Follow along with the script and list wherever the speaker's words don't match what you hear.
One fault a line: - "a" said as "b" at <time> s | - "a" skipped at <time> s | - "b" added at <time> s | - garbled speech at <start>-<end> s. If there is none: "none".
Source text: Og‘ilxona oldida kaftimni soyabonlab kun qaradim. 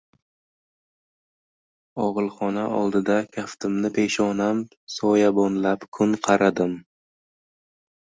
- "peshonam" added at 4.0 s